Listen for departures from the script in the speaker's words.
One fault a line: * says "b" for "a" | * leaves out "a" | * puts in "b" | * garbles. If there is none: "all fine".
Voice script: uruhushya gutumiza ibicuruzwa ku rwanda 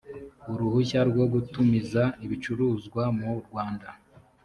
* puts in "rwo"
* says "mu" for "ku"